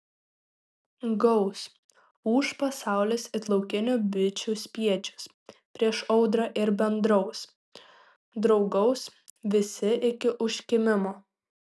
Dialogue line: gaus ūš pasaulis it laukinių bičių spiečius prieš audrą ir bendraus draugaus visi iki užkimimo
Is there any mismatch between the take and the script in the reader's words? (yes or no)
no